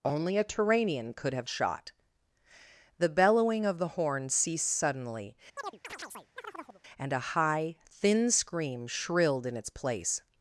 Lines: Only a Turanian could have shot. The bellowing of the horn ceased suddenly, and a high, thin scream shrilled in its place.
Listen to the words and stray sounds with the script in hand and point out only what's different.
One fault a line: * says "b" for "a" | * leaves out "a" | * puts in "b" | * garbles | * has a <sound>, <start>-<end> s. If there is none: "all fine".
* has a chirp, 5.6-6.8 s